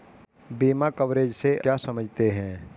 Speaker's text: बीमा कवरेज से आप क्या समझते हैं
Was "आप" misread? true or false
true